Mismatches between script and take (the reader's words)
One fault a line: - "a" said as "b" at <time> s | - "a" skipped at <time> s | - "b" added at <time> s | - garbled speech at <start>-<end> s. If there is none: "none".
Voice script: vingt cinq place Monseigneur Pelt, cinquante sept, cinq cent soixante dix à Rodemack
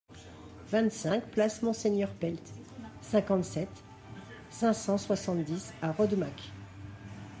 none